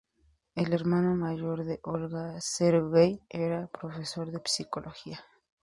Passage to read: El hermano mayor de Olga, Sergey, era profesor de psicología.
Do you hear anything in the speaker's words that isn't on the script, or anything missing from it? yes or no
no